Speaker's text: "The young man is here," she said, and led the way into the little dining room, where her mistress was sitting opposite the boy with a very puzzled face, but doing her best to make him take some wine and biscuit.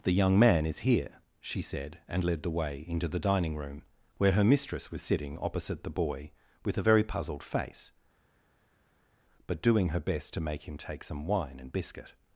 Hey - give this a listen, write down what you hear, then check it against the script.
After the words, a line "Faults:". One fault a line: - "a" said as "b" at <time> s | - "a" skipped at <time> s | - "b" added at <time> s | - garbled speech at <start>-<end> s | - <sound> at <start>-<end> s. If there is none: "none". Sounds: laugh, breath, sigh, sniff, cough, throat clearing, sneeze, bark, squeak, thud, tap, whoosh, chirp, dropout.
"The young man is here," she said, and led the way into the dining room, where her mistress was sitting opposite the boy with a very puzzled face, but doing her best to make him take some wine and biscuit.
Faults:
- "little" skipped at 3.2 s